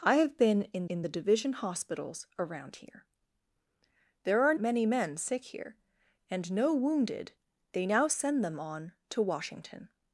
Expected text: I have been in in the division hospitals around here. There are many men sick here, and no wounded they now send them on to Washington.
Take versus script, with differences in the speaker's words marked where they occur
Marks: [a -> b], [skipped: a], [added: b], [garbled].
I have been in in the division hospitals around here. There are many men sick here, and no wounded they now send them on to Washington.